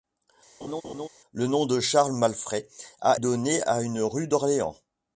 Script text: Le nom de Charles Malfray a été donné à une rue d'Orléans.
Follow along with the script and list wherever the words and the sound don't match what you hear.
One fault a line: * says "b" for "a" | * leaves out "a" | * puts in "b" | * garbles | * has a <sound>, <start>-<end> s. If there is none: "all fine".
* has a laugh, 0.6-1.1 s
* leaves out "été"